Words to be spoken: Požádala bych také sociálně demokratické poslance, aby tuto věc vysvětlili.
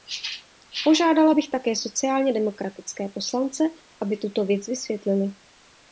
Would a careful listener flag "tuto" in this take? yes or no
no